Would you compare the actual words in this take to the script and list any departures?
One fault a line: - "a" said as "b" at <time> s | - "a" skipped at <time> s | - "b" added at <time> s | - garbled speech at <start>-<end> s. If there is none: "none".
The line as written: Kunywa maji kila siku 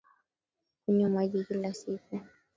none